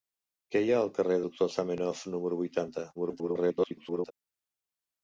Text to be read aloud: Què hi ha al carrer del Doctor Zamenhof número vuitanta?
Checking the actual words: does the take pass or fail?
fail